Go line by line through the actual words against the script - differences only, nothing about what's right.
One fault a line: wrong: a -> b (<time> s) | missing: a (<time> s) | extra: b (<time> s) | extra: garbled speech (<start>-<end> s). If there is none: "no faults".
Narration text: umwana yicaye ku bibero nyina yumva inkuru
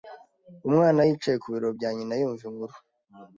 extra: bya (1.8 s)